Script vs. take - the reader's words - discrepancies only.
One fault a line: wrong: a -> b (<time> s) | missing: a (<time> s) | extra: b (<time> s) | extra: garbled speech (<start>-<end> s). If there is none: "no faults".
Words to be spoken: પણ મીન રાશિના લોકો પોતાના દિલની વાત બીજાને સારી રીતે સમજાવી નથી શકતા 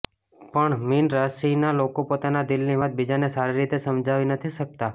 no faults